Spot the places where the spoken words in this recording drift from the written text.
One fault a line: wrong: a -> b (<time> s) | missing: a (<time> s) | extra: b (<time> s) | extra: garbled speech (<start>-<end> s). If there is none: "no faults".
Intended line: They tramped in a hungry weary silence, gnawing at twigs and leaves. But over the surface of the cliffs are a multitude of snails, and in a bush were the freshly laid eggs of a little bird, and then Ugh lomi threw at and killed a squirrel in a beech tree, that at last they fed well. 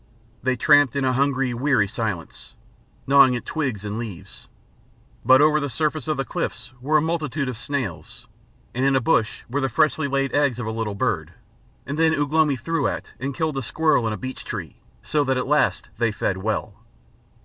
wrong: are -> were (6.8 s)
extra: so (15.0 s)